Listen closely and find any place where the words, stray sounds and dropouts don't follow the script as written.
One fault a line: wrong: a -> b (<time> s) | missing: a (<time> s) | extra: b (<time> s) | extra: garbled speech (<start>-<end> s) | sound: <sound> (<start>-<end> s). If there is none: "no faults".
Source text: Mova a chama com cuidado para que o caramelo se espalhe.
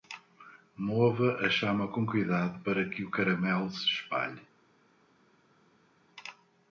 no faults